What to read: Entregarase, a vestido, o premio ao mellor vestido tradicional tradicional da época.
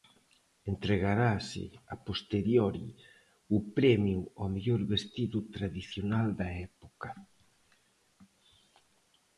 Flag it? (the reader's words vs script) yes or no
yes